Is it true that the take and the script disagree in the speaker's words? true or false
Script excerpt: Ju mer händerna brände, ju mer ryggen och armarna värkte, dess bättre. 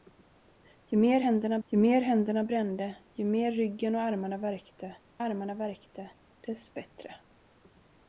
true